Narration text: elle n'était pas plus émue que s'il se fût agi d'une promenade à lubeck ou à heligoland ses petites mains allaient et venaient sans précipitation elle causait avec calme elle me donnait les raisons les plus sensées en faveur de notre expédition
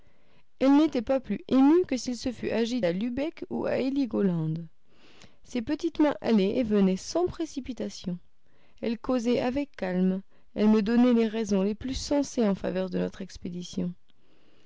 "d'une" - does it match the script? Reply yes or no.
no